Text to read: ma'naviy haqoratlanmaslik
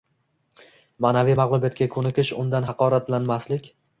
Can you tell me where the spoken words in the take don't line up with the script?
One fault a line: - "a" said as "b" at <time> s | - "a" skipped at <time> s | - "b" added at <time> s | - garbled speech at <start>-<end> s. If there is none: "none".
- "mag'lubiyatga ko'nikish undan" added at 1.4 s